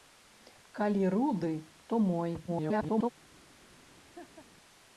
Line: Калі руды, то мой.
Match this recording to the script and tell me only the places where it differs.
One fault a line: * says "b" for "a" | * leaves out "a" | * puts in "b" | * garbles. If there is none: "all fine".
* garbles